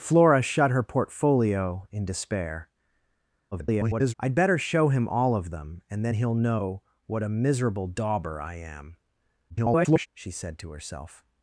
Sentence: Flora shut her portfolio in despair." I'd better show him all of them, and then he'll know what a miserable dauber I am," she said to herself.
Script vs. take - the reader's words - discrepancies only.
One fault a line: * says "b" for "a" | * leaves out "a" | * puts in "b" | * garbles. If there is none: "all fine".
* garbles
* garbles